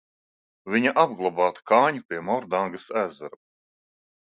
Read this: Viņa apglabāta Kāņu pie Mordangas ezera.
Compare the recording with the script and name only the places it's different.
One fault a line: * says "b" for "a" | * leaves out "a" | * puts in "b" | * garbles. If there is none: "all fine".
all fine